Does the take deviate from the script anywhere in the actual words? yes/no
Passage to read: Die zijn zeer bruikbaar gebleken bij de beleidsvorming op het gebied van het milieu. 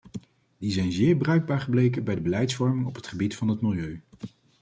no